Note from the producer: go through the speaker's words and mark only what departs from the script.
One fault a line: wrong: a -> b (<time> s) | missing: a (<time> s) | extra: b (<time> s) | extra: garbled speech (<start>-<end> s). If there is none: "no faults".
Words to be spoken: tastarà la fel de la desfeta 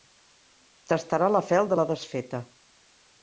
no faults